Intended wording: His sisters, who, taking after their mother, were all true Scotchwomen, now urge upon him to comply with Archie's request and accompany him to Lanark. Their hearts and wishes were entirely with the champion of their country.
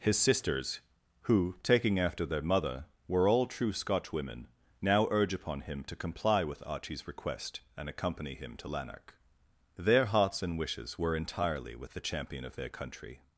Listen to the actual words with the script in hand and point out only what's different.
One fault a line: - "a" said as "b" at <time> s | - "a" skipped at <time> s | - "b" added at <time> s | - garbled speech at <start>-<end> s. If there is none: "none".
none